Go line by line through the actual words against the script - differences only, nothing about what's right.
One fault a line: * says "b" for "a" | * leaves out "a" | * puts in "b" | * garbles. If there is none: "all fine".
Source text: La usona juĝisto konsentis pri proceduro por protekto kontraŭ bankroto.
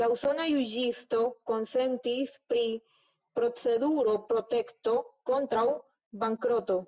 * leaves out "por"